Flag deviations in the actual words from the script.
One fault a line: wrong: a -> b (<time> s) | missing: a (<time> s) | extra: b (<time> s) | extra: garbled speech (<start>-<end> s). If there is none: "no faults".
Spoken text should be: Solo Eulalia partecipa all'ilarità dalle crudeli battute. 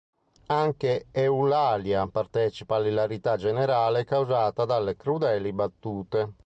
wrong: Solo -> Anche (0.5 s)
extra: generale causata (3.4 s)